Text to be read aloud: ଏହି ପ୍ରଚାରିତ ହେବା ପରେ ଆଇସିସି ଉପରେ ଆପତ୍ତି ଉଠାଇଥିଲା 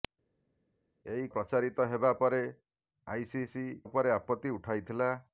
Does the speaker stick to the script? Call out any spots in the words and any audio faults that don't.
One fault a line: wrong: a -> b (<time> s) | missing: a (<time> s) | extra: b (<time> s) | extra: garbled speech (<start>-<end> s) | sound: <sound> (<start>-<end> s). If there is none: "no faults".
no faults